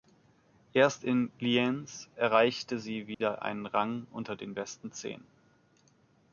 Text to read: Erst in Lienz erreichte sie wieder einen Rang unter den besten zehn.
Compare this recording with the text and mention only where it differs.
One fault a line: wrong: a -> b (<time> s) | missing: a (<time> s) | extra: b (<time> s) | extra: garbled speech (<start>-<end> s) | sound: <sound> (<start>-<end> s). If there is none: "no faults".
sound: dropout (3.1-3.2 s)